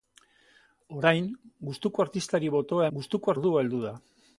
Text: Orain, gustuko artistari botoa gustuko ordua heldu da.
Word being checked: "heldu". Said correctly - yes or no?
yes